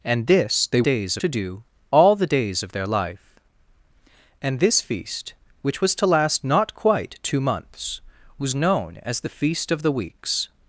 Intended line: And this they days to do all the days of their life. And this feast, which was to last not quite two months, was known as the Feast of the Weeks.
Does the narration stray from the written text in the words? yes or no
no